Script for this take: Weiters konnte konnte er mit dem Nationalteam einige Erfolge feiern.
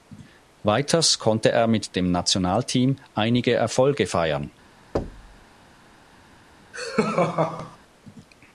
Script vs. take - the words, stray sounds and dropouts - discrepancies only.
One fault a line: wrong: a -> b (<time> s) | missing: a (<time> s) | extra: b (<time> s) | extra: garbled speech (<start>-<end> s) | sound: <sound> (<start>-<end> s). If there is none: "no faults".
missing: konnte (1.5 s)
sound: thud (4.9-5.4 s)
sound: laugh (6.7-7.8 s)